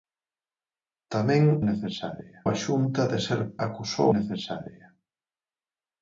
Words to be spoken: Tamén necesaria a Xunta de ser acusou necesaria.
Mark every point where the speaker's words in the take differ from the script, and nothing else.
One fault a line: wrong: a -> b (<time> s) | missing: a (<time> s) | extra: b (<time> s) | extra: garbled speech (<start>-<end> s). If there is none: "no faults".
no faults